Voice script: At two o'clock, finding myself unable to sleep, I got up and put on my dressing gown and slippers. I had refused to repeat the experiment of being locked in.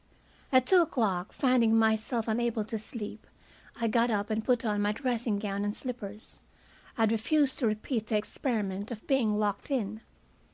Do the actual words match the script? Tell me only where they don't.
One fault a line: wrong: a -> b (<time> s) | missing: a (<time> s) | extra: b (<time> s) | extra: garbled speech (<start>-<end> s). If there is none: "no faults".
no faults